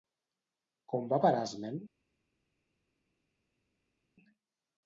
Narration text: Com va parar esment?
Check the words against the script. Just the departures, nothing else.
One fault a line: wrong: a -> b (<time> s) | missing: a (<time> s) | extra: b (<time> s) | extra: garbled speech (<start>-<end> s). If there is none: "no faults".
no faults